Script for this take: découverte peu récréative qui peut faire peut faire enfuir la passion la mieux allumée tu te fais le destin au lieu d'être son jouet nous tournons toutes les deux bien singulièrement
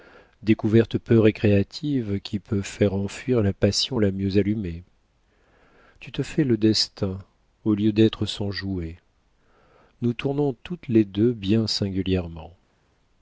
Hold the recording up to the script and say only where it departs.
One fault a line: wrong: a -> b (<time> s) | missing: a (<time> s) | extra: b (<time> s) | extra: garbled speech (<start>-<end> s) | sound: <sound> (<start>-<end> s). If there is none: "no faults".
missing: peut faire (2.9 s)